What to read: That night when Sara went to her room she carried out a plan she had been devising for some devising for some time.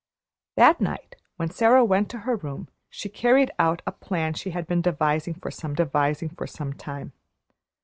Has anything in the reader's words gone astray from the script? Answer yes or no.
no